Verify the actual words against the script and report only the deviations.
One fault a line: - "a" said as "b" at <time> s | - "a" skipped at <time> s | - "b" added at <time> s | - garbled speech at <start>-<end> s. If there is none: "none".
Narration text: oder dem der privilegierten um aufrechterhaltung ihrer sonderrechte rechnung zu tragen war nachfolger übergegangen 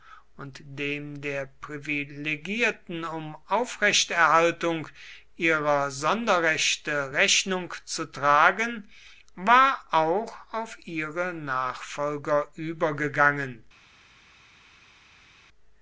- "oder" said as "und" at 0.3 s
- "auch auf ihre" added at 9.9 s